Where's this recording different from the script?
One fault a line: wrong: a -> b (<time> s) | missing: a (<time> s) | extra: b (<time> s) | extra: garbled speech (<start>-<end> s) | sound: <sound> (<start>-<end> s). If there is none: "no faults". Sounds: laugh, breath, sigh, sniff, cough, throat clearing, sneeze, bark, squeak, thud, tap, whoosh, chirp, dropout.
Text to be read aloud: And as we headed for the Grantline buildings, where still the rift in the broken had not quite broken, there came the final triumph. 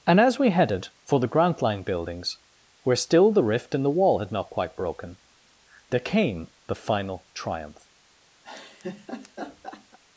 wrong: broken -> wall (4.0 s)
sound: laugh (8.4-10.0 s)